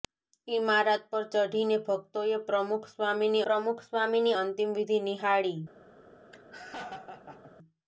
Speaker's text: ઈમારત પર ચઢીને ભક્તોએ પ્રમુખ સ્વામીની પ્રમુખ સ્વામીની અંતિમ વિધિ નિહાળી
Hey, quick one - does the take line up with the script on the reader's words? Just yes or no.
yes